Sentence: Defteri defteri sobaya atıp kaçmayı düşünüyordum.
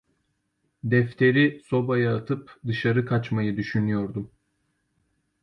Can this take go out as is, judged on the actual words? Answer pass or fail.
fail